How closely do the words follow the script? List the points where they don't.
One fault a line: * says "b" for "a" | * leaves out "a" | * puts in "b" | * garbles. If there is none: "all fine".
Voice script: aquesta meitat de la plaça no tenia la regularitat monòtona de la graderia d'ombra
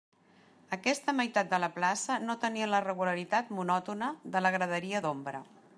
all fine